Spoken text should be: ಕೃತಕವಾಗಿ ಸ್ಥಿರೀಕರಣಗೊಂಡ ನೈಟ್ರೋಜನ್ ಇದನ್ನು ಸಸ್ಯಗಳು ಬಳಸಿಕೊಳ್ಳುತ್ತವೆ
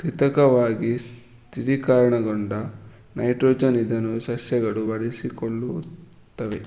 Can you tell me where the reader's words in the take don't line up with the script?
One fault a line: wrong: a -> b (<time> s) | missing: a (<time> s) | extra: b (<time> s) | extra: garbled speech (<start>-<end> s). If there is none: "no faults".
no faults